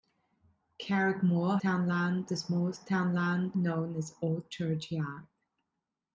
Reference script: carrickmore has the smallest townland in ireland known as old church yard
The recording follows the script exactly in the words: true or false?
false